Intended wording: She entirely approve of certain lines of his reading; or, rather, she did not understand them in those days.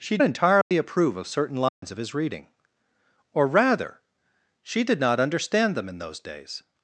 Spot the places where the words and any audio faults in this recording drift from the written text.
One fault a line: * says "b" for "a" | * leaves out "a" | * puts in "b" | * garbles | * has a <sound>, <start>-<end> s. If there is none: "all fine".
* has a dropout, 0.6-0.7 s
* has a dropout, 1.7-1.8 s